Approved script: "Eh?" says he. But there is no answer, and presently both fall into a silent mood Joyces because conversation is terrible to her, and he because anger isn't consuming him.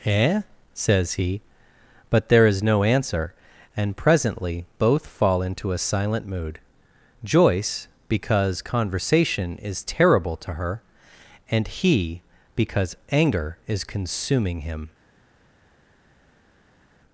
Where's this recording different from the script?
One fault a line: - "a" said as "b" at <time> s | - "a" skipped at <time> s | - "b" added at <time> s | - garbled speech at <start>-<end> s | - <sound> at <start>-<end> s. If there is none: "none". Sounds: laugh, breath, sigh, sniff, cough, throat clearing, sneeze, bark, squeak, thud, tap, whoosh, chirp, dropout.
- "Joyces" said as "Joyce" at 7.2 s
- "isn't" said as "is" at 13.7 s